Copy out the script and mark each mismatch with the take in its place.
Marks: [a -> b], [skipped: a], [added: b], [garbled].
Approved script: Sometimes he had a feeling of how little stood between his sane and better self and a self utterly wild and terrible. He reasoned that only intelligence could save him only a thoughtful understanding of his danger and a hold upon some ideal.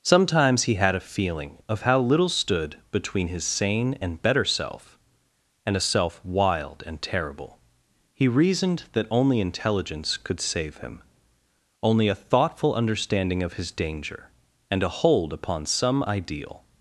Sometimes he had a feeling of how little stood between his sane and better self and a self [skipped: utterly] wild and terrible. He reasoned that only intelligence could save him only a thoughtful understanding of his danger and a hold upon some ideal.